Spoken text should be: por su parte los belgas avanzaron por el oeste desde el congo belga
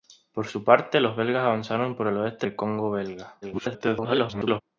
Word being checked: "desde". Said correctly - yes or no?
no